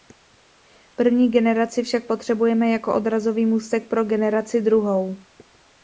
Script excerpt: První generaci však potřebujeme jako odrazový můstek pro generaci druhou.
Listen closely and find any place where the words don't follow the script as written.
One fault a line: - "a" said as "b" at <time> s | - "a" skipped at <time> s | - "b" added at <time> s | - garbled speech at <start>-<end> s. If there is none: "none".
none